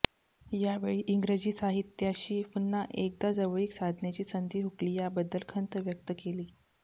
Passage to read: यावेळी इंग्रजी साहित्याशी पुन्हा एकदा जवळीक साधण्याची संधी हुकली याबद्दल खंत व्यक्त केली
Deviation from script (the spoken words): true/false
false